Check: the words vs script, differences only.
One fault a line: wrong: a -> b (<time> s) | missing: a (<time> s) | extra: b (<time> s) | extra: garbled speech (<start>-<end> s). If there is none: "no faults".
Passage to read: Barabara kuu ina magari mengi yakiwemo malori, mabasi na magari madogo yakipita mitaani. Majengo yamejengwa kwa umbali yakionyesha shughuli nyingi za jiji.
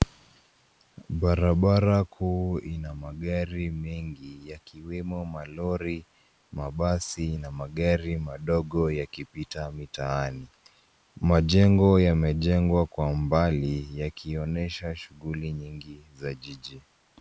no faults